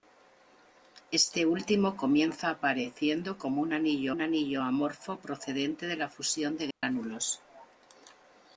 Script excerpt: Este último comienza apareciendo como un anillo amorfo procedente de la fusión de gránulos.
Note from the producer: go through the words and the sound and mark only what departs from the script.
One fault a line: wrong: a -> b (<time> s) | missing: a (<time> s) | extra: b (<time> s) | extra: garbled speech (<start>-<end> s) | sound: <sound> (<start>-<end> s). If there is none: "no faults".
extra: un anillo (4.1 s)
sound: dropout (6.7-6.8 s)